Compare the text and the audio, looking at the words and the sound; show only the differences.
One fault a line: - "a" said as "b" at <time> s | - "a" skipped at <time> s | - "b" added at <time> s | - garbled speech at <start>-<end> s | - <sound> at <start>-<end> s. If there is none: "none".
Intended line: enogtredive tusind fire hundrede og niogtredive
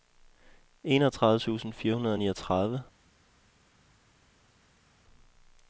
none